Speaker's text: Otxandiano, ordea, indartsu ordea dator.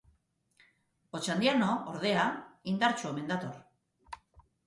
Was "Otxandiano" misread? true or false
false